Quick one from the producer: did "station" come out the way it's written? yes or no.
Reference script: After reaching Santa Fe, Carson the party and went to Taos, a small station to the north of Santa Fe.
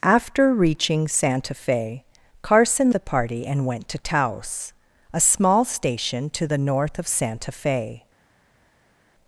yes